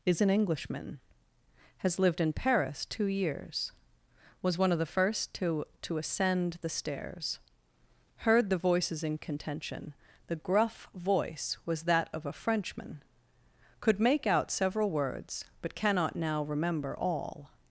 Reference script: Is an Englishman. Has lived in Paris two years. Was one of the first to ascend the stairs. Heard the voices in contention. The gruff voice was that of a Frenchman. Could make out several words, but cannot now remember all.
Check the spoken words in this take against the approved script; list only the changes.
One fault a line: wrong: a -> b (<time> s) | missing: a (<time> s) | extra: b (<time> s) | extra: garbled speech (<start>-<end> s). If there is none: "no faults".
extra: to (5.8 s)